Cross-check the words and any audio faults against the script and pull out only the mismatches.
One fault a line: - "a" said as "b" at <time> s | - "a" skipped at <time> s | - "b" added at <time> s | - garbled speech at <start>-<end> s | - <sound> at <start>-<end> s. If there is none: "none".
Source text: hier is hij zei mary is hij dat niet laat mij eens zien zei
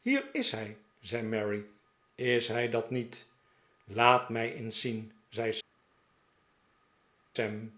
none